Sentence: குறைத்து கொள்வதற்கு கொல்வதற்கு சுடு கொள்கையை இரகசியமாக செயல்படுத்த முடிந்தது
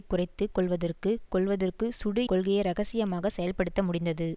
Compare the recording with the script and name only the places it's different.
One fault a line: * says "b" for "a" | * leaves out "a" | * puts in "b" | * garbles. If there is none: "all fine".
all fine